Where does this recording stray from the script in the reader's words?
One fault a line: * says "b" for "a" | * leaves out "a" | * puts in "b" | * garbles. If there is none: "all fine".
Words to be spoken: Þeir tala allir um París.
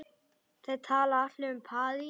all fine